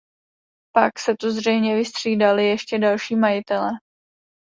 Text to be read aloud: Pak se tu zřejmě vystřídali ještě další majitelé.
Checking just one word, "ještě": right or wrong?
right